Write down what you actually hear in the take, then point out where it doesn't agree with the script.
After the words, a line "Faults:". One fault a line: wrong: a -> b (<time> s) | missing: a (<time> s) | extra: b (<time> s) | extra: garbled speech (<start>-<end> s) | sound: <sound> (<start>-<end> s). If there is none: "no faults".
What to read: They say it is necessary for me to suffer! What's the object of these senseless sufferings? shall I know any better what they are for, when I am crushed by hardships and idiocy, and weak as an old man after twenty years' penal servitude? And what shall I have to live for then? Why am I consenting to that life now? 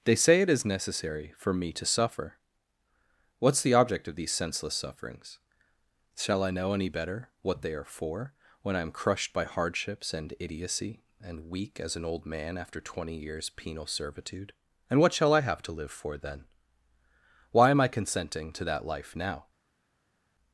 They say it is necessary for me to suffer! What's the object of these senseless sufferings? shall I know any better what they are for, when I am crushed by hardships and idiocy, and weak as an old man after twenty years' penal servitude? And what shall I have to live for then? Why am I consenting to that life now?
Faults:
no faults